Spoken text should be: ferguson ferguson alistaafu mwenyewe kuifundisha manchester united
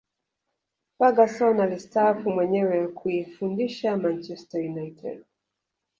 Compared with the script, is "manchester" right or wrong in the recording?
right